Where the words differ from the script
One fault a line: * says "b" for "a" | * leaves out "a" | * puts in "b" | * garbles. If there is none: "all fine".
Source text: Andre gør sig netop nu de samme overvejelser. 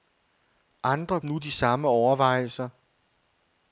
* leaves out "gør sig netop"